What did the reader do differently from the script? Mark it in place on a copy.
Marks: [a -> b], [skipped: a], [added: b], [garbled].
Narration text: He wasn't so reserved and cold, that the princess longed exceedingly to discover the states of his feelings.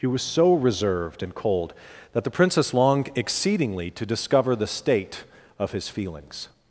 He [wasn't -> was] so reserved and cold, that the princess longed exceedingly to discover the [states -> state] of his feelings.